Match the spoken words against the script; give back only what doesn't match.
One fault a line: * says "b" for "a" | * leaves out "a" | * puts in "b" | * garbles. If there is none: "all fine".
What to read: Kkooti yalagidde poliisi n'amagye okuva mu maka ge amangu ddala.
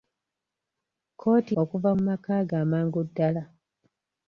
* leaves out "yalagidde poliisi n'amagye"